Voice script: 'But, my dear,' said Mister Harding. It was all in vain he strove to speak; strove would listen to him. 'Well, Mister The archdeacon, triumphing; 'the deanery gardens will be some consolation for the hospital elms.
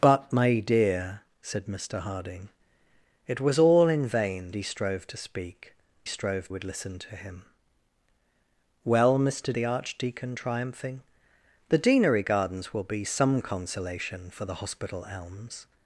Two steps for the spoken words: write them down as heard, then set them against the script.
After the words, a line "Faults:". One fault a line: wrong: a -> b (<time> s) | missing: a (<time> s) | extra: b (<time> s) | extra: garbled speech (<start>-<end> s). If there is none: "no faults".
'But, my dear,' said Mister Harding. It was all in vain he strove to speak; strove would listen to him. 'Well, Mister The archdeacon, triumphing; 'the deanery gardens will be some consolation for the hospital elms.
Faults:
no faults